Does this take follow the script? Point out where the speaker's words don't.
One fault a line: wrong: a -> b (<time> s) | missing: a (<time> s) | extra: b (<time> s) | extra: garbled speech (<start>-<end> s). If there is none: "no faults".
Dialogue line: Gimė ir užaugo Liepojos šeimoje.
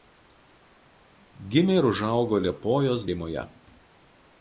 no faults